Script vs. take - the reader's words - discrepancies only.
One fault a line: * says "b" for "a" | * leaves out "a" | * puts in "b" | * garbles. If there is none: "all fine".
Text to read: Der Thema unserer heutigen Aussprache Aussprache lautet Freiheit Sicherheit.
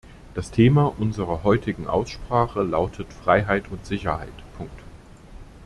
* says "Das" for "Der"
* leaves out "Aussprache"
* puts in "und"